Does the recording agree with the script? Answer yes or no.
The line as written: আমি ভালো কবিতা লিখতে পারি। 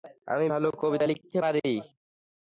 yes